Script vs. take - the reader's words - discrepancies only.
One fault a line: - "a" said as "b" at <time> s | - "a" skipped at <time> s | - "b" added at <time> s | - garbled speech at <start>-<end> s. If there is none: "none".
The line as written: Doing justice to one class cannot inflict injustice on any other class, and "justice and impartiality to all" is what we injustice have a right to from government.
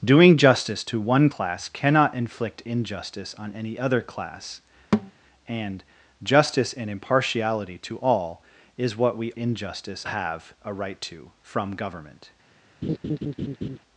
none